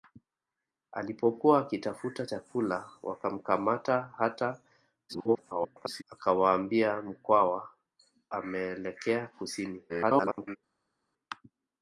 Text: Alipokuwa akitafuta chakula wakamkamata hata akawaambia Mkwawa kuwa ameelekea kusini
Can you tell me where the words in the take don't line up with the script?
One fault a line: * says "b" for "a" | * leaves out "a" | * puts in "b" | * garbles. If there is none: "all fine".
* garbles
* leaves out "kuwa"
* garbles